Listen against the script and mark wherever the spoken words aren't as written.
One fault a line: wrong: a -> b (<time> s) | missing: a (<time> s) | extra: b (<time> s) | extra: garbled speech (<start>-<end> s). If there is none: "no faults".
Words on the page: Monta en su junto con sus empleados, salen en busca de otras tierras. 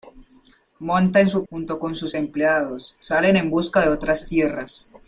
no faults